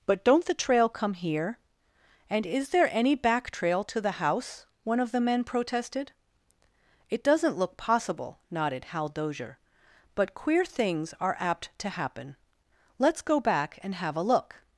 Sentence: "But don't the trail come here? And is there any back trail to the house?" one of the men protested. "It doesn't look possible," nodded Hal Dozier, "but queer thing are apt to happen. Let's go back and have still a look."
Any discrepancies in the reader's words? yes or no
yes